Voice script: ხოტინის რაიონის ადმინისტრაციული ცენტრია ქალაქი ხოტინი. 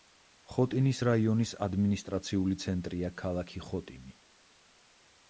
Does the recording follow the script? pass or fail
pass